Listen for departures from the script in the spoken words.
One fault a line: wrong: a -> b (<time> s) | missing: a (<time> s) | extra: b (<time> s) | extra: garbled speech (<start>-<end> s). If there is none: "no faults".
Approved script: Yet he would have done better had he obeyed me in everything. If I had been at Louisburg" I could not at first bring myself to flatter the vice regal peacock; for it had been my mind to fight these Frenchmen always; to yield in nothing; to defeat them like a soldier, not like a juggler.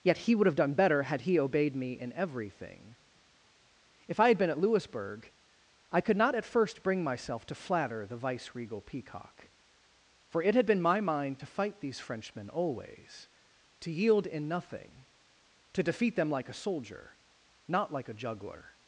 no faults